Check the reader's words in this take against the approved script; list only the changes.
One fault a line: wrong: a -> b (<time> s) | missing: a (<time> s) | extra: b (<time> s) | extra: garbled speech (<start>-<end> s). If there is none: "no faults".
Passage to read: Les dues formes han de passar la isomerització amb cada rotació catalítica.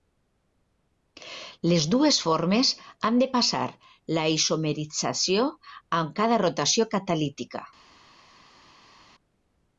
no faults